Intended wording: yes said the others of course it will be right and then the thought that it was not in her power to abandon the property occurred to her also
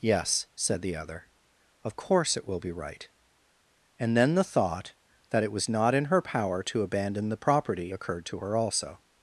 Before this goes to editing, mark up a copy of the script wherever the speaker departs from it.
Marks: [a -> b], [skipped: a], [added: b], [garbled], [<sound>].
yes said the [others -> other] of course it will be right and then the thought that it was not in her power to abandon the property occurred to her also